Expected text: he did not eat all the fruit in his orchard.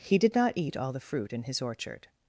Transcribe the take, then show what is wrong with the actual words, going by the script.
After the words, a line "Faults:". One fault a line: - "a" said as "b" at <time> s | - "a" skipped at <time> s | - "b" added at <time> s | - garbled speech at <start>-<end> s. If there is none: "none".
he did not eat all the fruit in his orchard.
Faults:
none